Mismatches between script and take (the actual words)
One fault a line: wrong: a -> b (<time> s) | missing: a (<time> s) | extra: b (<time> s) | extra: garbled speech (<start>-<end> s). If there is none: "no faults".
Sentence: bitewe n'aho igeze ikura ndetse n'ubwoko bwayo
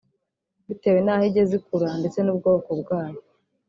no faults